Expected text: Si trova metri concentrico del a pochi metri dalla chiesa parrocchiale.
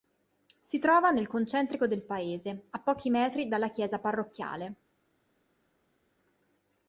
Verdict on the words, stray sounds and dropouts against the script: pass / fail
fail